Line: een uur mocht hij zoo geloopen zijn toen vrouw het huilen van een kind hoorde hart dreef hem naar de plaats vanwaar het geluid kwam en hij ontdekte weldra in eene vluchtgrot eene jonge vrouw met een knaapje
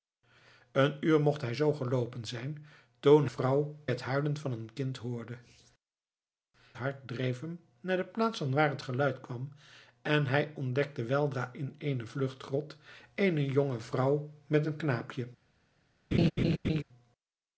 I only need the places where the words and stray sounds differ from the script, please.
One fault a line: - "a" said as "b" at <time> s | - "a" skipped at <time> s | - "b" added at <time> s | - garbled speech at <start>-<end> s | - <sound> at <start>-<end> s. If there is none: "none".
- laugh at 16.1-16.8 s